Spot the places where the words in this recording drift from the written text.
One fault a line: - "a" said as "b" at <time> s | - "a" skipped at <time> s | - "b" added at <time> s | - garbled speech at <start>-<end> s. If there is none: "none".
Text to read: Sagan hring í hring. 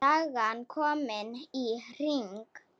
- "hring" said as "komin" at 0.7 s